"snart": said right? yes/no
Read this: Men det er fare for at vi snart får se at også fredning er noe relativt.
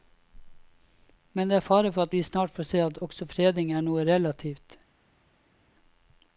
yes